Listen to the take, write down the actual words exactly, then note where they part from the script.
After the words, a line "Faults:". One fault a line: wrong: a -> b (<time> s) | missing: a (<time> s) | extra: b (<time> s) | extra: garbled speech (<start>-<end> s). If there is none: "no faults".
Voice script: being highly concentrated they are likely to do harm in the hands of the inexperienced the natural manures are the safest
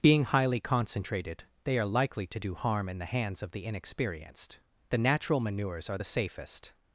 being highly concentrated they are likely to do harm in the hands of the inexperienced the natural manures are the safest
Faults:
no faults